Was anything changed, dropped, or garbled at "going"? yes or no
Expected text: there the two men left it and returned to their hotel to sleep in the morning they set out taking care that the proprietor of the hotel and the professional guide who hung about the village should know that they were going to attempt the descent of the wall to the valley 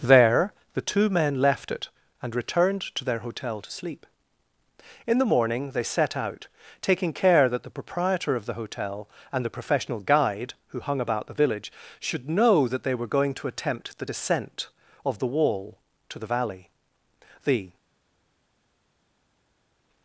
no